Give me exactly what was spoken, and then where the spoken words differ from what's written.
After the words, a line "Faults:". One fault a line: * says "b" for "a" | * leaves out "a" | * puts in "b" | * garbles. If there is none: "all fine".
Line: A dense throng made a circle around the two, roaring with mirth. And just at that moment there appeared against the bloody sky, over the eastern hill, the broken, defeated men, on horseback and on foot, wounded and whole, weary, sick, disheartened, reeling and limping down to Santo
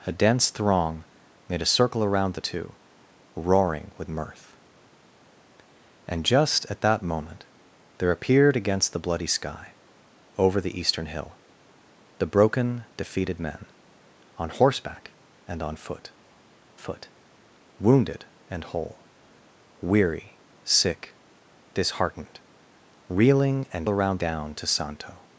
A dense throng made a circle around the two, roaring with mirth. And just at that moment there appeared against the bloody sky, over the eastern hill, the broken, defeated men, on horseback and on foot foot, wounded and whole, weary, sick, disheartened, reeling and around down to Santo
Faults:
* puts in "foot"
* says "around" for "limping"